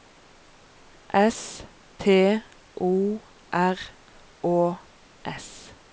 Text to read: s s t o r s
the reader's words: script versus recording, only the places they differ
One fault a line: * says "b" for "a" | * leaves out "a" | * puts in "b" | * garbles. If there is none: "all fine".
* leaves out "s"
* puts in "å"